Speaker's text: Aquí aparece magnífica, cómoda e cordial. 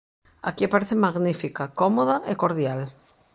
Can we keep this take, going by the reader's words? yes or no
yes